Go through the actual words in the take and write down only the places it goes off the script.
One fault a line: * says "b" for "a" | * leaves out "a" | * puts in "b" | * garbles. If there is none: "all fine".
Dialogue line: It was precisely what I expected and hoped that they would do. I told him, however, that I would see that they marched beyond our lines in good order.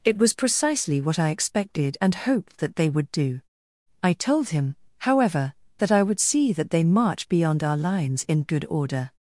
* says "march" for "marched"